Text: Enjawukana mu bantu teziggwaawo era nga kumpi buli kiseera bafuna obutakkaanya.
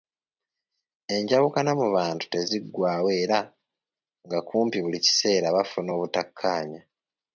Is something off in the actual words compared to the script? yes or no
no